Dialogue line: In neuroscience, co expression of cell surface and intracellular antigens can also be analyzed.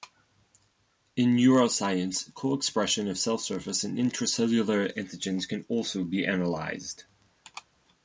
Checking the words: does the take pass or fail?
pass